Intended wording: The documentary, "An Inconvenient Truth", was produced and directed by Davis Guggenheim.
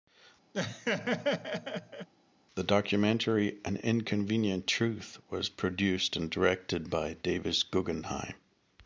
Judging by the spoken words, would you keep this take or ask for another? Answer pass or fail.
pass